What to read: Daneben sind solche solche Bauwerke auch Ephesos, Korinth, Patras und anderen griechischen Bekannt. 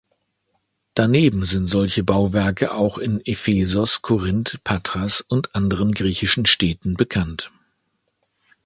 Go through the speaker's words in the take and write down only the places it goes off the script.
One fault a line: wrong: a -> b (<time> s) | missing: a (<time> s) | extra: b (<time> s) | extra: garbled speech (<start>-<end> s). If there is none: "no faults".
missing: solche (2.0 s)
extra: in (3.0 s)
extra: Städten (6.5 s)